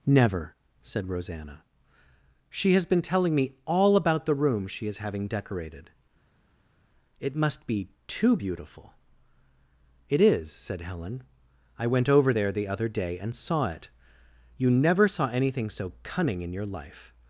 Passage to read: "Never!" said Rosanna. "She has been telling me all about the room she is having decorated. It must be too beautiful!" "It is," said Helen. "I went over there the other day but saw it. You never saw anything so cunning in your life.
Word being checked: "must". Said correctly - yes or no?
yes